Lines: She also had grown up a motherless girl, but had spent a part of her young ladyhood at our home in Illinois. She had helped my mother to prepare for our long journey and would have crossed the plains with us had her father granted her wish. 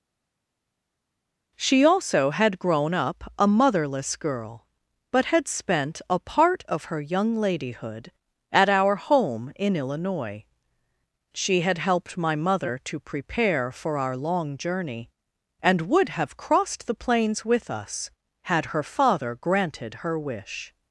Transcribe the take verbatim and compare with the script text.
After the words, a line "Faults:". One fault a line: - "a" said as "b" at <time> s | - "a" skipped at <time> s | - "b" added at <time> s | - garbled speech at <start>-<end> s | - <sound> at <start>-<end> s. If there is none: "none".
She also had grown up a motherless girl, but had spent a part of her young ladyhood at our home in Illinois. She had helped my mother to prepare for our long journey and would have crossed the plains with us had her father granted her wish.
Faults:
none